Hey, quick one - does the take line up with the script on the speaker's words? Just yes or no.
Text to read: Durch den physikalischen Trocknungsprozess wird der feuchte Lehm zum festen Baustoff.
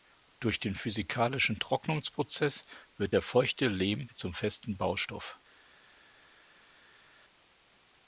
yes